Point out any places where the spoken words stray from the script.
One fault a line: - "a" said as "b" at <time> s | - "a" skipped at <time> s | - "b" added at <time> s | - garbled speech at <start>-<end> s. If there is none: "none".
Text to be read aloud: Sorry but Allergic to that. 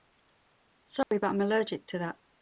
- "I'm" added at 1.3 s